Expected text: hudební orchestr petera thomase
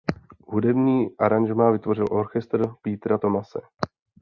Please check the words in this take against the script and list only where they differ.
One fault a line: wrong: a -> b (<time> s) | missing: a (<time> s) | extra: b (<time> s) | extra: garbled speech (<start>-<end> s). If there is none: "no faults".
extra: aranžmá vytvořil (1.2 s)